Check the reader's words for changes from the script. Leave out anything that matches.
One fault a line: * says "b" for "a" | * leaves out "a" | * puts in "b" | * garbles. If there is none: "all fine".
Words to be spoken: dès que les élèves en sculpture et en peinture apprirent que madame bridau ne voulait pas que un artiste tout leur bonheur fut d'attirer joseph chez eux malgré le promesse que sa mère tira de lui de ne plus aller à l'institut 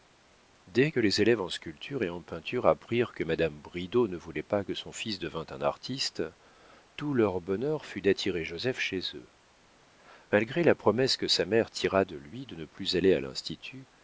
* puts in "son fils devînt"
* says "la" for "le"